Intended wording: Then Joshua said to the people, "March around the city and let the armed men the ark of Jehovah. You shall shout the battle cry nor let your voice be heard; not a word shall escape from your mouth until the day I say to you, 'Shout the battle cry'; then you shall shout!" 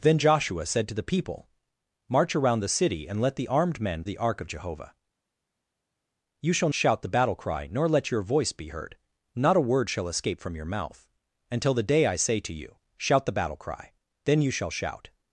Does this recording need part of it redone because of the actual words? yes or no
no